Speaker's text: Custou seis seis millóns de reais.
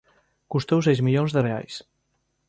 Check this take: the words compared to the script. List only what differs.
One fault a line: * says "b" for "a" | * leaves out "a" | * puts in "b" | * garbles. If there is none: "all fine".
* leaves out "seis"